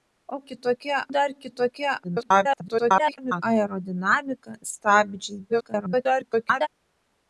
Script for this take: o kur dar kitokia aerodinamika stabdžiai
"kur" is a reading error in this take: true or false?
true